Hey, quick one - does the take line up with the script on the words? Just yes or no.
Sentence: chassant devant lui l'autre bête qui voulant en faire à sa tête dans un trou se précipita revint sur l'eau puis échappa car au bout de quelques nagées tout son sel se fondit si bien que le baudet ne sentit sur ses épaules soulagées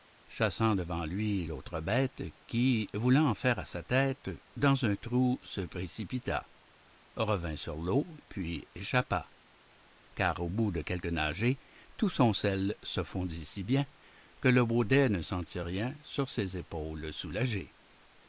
no